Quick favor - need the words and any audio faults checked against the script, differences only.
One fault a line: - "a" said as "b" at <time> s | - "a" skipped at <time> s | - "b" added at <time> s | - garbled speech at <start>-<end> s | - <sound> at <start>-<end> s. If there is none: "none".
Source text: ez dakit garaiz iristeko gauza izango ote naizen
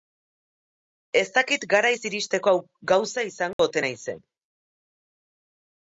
- dropout at 3.5-3.6 s